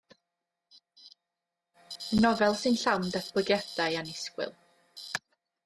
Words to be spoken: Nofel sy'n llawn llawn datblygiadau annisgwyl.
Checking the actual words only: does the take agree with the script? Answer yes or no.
no